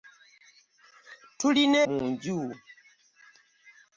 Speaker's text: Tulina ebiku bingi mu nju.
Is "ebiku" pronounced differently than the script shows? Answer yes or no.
yes